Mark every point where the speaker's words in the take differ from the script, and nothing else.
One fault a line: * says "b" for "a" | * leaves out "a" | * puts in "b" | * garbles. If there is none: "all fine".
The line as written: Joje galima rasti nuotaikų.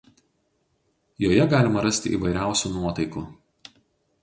* puts in "įvairiausių"